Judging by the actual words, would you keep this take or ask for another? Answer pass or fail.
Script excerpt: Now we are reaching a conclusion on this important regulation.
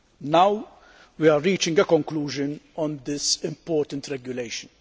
pass